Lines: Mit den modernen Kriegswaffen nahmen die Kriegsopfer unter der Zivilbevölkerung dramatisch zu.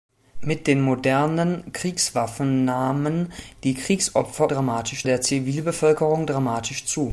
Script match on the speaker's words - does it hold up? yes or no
no